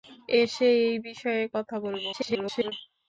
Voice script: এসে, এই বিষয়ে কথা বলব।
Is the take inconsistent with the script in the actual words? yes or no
yes